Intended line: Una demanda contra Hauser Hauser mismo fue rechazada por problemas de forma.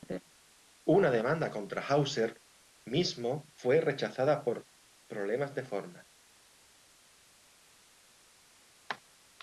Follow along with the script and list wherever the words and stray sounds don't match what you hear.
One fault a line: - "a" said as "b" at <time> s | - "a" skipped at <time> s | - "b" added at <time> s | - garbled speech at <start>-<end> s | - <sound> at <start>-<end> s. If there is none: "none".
- "Hauser" skipped at 2.4 s